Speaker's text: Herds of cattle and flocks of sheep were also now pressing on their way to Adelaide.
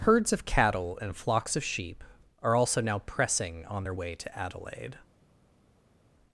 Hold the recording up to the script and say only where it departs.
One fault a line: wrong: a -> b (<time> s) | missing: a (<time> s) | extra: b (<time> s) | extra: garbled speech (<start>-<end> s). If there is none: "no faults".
wrong: were -> are (2.4 s)